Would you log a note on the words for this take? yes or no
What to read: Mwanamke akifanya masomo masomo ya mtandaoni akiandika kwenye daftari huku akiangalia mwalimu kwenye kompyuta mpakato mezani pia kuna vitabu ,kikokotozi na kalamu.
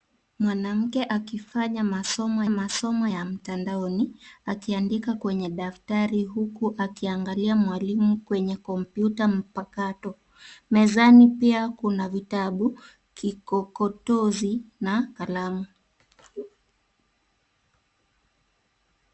no